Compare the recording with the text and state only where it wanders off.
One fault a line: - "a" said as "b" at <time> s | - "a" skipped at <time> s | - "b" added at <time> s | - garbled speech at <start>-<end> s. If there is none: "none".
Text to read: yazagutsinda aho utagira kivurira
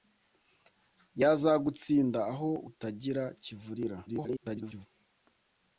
- garbled speech at 4.1-4.9 s